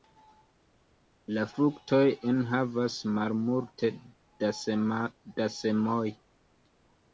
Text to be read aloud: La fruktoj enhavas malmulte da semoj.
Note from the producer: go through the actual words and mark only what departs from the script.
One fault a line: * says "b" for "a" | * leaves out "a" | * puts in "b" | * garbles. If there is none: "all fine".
all fine